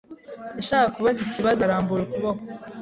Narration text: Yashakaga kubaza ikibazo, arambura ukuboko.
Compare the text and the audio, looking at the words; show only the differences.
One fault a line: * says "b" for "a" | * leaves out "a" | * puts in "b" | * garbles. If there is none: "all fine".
all fine